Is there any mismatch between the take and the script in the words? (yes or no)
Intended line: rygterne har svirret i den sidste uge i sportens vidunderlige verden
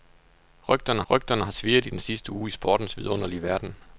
yes